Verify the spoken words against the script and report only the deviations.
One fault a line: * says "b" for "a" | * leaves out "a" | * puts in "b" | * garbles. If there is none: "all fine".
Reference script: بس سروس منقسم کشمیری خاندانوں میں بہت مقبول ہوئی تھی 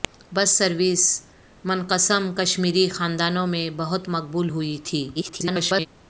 * garbles